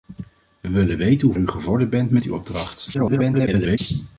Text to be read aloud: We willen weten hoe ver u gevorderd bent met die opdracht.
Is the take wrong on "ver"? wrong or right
wrong